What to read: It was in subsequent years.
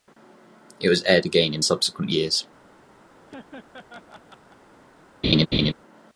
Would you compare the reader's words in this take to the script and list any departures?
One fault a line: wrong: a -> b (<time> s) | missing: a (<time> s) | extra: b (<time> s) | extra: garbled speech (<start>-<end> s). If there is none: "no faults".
extra: aired again (1.0 s)